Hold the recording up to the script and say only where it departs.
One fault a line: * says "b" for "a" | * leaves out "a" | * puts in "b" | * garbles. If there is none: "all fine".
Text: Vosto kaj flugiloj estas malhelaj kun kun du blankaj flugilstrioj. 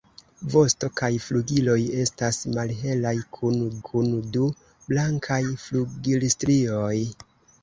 all fine